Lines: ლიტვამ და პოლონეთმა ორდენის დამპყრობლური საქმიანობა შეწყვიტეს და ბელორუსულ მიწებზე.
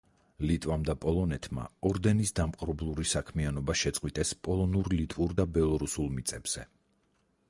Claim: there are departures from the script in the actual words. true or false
true